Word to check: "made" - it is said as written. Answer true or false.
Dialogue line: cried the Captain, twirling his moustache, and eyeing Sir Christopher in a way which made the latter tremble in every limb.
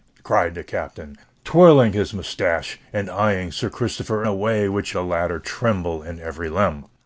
false